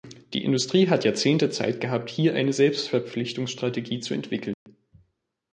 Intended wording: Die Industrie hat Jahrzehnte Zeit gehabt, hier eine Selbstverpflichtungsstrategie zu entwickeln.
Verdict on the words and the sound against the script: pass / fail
fail